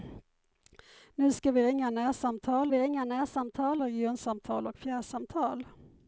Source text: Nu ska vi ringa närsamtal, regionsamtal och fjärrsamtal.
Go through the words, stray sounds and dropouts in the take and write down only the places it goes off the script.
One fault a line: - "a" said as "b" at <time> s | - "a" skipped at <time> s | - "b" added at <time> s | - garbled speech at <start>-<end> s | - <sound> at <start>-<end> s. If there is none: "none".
- "vi ringa närsamtal" added at 2.7 s